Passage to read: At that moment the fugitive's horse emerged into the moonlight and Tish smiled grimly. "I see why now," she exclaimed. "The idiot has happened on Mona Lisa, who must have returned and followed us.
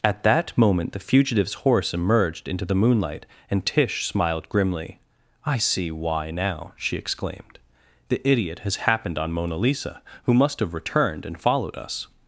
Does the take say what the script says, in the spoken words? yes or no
yes